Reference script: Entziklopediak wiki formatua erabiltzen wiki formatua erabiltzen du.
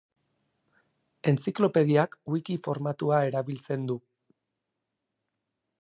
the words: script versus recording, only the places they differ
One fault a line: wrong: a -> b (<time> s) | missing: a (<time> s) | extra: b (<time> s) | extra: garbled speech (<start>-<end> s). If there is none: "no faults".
missing: wiki formatua erabiltzen (3.8 s)